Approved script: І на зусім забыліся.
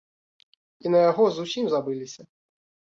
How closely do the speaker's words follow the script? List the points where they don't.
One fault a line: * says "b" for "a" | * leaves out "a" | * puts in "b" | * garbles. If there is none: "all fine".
* puts in "яго"